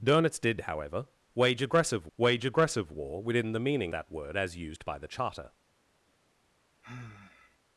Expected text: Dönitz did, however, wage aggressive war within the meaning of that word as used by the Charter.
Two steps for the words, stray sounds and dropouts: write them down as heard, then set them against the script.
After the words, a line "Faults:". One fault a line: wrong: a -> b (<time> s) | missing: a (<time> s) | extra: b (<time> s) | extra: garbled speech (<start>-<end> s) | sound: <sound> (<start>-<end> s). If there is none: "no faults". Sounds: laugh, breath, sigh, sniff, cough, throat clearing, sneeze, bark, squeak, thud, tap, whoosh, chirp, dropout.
Dönitz did, however, wage aggressive wage aggressive war within the meaning that word as used by the Charter.
Faults:
extra: wage aggressive (2.2 s)
missing: of (3.9 s)
sound: sigh (6.8-7.6 s)